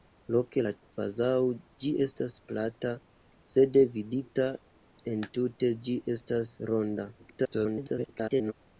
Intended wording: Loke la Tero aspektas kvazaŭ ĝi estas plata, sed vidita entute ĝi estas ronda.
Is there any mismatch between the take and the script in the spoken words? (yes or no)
yes